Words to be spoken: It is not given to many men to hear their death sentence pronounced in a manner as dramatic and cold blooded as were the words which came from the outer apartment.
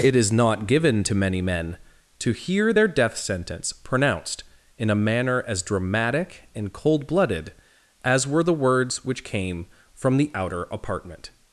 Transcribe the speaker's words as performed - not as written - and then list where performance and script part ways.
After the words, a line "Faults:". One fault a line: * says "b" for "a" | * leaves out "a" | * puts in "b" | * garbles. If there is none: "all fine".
It is not given to many men to hear their death sentence pronounced in a manner as dramatic and cold blooded as were the words which came from the outer apartment.
Faults:
all fine